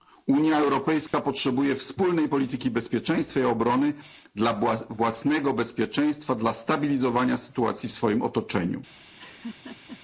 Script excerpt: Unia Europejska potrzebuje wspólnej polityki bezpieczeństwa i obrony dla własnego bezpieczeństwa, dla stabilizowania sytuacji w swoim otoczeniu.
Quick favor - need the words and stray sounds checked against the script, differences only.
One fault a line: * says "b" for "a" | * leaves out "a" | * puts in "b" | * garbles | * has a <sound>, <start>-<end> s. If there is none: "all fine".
* has a dropout, 1.1-1.1 s
* has a laugh, 9.2-10.0 s